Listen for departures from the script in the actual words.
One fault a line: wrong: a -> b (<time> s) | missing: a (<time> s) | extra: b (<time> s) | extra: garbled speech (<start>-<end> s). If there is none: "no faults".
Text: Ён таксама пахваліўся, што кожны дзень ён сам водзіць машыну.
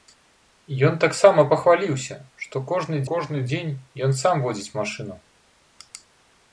extra: кожны (3.1 s)